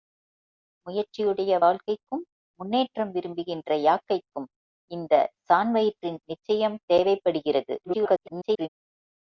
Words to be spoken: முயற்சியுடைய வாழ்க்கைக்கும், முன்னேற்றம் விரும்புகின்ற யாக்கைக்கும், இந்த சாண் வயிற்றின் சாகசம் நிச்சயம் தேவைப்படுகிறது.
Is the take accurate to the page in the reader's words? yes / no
no